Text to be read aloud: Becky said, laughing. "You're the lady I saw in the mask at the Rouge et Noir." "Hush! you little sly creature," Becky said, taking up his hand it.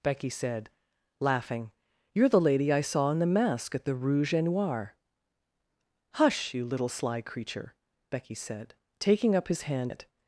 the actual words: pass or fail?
pass